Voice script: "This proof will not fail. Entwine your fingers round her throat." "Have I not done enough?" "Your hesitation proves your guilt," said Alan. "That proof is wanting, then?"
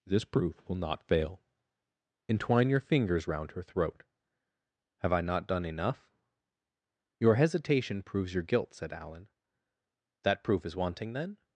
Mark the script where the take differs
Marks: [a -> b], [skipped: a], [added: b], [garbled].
"This proof will not fail. Entwine your fingers round her throat." "Have I not done enough?" "Your hesitation proves your guilt," said Alan. "That proof is wanting, then?"